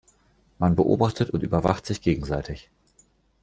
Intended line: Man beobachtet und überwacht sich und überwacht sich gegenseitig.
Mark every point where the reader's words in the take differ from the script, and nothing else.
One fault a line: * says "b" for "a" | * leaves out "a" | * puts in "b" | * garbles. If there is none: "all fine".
* leaves out "und überwacht sich"